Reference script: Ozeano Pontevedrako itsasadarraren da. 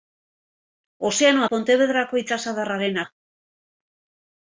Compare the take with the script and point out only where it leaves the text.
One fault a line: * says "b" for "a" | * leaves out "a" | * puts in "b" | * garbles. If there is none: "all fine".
all fine